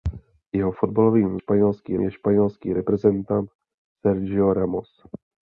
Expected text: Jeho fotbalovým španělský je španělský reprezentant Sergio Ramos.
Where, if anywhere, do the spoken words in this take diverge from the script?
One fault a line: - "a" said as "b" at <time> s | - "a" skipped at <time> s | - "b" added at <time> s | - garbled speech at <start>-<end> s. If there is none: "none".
none